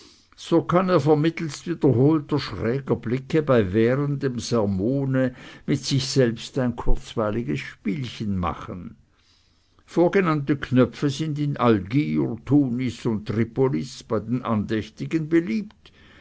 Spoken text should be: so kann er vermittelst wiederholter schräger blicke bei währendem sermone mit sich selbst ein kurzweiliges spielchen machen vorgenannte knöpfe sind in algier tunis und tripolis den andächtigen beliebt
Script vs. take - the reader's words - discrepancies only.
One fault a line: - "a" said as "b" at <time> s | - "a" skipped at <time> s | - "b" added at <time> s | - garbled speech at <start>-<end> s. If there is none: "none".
- "bei" added at 14.0 s